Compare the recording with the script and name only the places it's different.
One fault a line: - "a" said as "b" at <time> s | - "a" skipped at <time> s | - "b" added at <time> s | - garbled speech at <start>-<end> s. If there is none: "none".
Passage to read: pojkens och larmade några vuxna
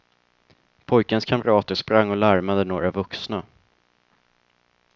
- "kamrater sprang" added at 1.2 s